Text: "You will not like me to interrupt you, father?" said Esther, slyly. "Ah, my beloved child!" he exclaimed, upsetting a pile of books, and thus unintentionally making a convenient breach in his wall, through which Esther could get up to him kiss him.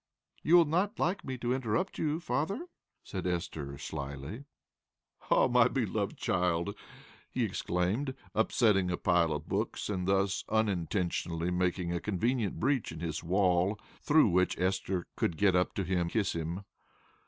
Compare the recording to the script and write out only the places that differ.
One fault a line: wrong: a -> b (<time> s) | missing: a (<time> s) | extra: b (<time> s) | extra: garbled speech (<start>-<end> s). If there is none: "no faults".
no faults